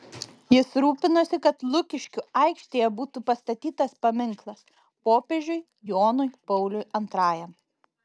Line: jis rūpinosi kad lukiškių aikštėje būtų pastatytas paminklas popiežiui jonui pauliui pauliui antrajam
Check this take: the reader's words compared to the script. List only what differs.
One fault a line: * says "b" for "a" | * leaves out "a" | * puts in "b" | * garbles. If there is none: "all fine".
* leaves out "pauliui"